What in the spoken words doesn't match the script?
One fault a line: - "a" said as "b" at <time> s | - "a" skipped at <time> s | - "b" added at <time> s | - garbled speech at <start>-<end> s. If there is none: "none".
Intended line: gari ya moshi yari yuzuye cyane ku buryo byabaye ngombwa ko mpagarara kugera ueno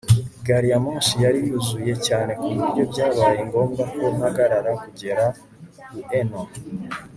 none